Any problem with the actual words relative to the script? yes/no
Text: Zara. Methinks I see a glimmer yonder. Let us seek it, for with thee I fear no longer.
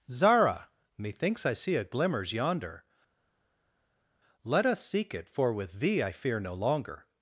yes